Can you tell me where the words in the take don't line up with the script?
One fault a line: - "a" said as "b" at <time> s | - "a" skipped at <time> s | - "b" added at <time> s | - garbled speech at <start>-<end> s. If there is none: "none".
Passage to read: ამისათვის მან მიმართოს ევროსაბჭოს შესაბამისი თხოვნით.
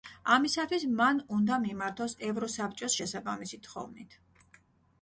- "უნდა" added at 1.4 s